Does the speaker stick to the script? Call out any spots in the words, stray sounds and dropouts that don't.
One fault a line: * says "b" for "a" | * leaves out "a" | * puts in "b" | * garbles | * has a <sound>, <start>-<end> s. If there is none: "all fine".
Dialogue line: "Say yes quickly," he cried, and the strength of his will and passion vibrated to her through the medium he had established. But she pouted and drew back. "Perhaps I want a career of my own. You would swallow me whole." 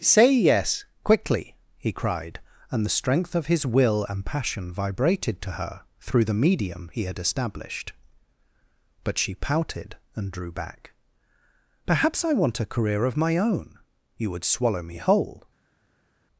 all fine